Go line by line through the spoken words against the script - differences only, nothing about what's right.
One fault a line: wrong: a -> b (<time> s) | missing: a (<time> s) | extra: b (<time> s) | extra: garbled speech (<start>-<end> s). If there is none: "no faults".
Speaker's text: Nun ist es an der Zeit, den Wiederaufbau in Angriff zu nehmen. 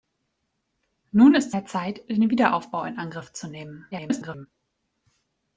missing: es an (1.5 s)
extra: garbled speech (3.9-4.5 s)